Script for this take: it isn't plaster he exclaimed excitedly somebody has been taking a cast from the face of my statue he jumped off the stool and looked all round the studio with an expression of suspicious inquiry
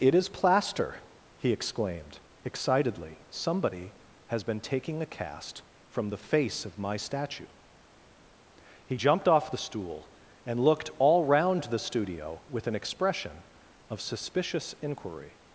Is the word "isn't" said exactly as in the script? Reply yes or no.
no